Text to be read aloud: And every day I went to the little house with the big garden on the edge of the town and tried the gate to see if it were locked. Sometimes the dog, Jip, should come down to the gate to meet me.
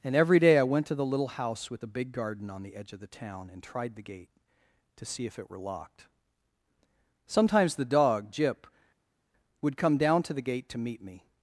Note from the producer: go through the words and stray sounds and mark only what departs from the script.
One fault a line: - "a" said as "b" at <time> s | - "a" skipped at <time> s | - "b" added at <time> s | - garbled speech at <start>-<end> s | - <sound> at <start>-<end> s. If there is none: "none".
- "should" said as "would" at 9.6 s